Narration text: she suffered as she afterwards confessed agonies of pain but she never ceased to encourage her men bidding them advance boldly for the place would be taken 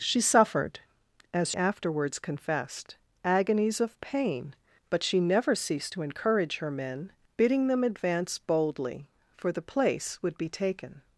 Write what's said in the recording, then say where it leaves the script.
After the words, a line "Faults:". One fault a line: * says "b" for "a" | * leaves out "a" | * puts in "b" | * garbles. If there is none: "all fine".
she suffered as afterwards confessed agonies of pain but she never ceased to encourage her men bidding them advance boldly for the place would be taken
Faults:
* leaves out "she"